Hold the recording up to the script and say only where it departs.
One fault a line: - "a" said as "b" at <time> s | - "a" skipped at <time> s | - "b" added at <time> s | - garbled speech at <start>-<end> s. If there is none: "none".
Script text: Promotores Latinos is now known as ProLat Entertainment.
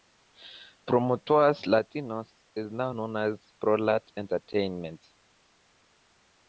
none